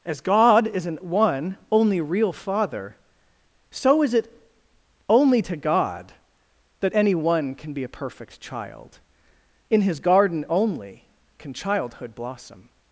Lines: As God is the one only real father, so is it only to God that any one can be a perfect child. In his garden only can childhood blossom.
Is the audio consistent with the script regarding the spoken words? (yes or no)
no